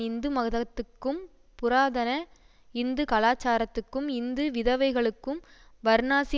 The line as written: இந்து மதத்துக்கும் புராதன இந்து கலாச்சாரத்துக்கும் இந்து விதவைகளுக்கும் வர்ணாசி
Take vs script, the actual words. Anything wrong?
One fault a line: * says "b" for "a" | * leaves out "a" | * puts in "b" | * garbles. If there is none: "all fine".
all fine